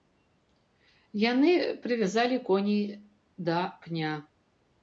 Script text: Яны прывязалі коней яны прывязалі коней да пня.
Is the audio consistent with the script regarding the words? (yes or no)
no